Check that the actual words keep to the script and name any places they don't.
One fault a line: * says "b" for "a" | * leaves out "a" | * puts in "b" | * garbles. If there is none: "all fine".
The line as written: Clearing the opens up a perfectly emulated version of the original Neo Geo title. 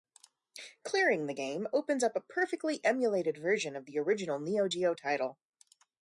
* puts in "game"